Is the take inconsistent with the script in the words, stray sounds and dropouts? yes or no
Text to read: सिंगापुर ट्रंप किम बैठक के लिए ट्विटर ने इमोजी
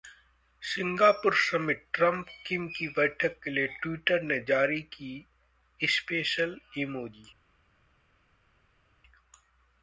yes